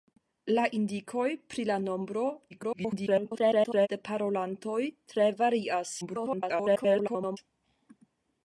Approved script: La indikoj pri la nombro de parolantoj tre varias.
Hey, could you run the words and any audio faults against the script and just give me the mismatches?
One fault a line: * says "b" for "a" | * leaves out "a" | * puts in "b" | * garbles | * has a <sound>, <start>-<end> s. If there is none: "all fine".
* garbles
* garbles